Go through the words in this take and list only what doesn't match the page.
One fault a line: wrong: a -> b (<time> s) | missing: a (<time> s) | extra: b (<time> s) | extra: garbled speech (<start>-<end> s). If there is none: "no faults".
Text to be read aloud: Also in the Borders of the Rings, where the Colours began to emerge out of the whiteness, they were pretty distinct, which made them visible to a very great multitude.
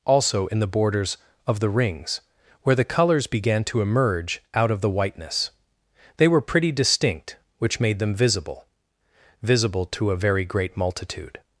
extra: visible (9.4 s)